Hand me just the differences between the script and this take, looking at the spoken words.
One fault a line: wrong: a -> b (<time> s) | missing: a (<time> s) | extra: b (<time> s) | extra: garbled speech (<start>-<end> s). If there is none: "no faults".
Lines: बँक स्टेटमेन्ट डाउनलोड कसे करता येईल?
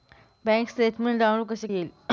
missing: करता (1.7 s)